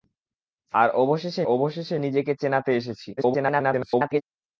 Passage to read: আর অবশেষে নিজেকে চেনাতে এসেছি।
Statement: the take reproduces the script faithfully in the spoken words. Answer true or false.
false